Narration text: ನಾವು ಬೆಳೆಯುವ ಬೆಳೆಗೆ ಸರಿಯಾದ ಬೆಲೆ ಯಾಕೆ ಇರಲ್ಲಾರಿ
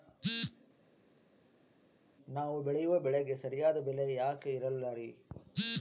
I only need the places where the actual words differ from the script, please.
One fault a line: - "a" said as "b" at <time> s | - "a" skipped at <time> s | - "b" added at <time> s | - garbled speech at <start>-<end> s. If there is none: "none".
none